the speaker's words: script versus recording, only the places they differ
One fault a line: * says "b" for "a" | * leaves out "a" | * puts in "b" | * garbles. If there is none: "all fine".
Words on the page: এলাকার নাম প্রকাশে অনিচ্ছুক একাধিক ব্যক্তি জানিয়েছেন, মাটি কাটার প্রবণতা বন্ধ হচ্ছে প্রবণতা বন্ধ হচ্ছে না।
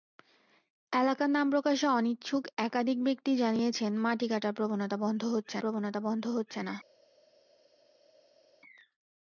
all fine